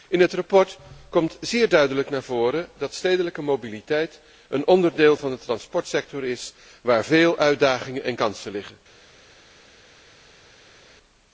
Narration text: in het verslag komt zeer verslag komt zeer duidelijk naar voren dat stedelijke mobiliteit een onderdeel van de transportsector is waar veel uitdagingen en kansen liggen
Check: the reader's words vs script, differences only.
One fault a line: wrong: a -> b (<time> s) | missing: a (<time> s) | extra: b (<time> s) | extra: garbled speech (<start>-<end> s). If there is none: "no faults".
missing: verslag komt zeer (1.7 s)